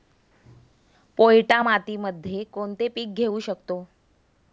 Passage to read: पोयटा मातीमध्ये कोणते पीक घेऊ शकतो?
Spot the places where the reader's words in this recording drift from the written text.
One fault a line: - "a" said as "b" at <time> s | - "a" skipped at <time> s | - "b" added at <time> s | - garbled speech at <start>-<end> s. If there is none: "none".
none